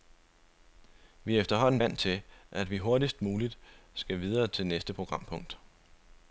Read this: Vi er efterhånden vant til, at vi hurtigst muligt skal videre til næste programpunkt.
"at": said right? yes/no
yes